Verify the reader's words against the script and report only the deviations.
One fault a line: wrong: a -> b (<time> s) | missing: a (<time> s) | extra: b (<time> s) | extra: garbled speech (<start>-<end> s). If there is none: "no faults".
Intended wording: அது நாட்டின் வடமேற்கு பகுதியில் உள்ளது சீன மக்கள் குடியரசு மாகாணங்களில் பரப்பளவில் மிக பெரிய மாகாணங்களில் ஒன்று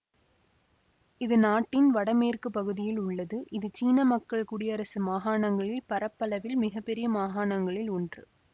wrong: அது -> இது (1.2 s)
extra: இது (3.5 s)